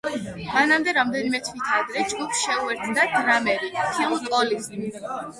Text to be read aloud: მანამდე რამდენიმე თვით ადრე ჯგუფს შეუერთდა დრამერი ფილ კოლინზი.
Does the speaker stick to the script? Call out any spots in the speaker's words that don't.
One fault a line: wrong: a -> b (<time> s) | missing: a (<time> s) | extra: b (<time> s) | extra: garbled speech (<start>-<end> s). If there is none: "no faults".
no faults